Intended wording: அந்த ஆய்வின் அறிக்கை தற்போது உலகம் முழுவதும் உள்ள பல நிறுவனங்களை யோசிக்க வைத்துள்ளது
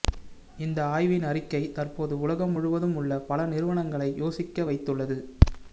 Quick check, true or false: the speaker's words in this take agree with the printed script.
false